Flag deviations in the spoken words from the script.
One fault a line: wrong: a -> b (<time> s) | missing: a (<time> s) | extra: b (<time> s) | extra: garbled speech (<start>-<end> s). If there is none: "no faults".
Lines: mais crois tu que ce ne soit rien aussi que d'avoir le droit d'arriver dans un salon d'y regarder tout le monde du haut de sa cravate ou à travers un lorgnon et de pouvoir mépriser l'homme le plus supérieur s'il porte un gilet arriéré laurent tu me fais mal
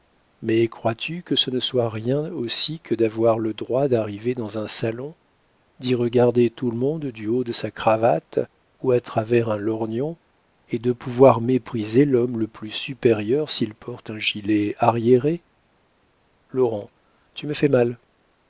no faults